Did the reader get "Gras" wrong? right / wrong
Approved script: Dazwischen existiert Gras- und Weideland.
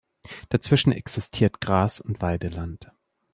right